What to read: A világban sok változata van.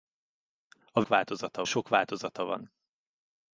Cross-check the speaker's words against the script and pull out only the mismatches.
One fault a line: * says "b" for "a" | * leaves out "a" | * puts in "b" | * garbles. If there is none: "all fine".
* says "változata" for "világban"